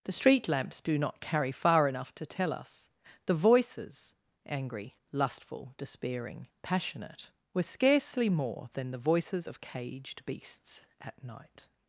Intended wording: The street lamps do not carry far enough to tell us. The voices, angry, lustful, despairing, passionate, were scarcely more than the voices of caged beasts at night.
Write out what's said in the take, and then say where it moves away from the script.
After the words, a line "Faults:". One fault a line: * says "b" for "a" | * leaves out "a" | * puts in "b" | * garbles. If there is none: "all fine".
The street lamps do not carry far enough to tell us. The voices, angry, lustful, despairing, passionate, were scarcely more than the voices of caged beasts at night.
Faults:
all fine